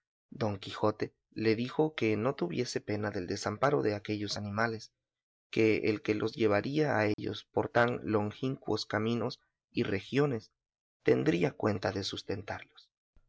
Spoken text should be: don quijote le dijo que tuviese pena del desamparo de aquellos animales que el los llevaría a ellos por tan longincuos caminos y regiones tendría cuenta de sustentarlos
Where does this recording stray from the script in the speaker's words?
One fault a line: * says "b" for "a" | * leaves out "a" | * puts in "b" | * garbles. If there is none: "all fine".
* puts in "no"
* puts in "que"